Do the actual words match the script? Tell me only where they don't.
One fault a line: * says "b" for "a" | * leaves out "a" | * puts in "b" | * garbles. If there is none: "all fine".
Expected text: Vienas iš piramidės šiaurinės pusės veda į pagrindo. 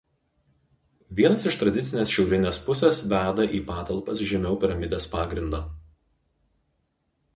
* says "tradicinės" for "piramidės"
* puts in "patalpas žemiau piramidės"